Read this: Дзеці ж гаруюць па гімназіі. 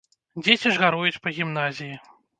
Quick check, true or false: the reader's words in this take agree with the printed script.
true